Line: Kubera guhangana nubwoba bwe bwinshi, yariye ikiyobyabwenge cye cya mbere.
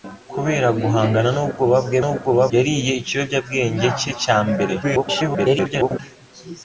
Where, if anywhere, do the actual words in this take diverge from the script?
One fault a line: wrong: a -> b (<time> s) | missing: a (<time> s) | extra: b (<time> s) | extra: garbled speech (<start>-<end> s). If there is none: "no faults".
wrong: bwinshi -> nubwoba (2.0 s)
extra: garbled speech (4.8-6.0 s)